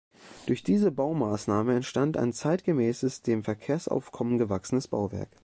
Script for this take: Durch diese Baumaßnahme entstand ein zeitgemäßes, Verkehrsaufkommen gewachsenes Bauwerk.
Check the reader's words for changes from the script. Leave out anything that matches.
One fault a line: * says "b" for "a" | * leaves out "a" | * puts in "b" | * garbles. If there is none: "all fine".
* puts in "dem"